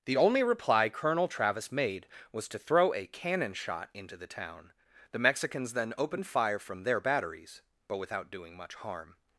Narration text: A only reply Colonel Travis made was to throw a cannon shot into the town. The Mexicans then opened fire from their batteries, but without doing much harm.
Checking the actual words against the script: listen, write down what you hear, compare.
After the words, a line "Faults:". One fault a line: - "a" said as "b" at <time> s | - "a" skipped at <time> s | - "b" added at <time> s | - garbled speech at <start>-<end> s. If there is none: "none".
The only reply Colonel Travis made was to throw a cannon shot into the town. The Mexicans then opened fire from their batteries, but without doing much harm.
Faults:
- "A" said as "The" at 0.1 s